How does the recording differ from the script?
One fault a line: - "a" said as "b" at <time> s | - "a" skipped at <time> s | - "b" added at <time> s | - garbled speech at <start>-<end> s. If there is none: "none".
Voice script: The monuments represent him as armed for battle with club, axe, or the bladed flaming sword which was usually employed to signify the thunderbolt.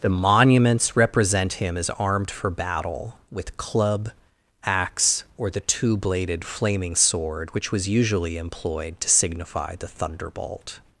- "two" added at 5.6 s